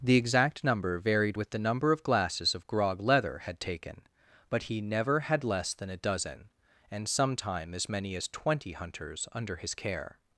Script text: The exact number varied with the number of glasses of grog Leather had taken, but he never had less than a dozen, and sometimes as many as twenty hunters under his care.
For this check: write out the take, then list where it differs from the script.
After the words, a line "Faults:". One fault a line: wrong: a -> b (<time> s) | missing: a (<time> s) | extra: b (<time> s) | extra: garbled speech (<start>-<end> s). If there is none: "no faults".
The exact number varied with the number of glasses of grog Leather had taken, but he never had less than a dozen, and sometime as many as twenty hunters under his care.
Faults:
wrong: sometimes -> sometime (7.1 s)